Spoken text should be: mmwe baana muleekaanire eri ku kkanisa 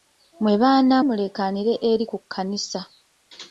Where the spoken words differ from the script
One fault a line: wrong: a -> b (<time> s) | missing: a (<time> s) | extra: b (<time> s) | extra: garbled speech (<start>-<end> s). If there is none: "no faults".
no faults